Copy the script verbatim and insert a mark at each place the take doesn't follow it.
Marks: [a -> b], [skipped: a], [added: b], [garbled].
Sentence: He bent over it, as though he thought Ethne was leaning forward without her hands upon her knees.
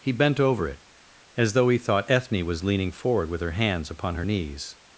He bent over it, as though he thought Ethne was leaning forward [without -> with] her hands upon her knees.